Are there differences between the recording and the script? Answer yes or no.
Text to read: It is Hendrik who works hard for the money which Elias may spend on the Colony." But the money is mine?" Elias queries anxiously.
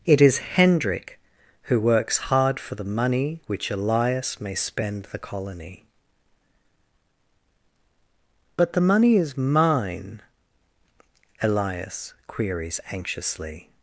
yes